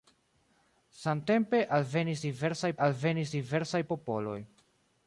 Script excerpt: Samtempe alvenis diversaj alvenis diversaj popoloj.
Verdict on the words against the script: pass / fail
pass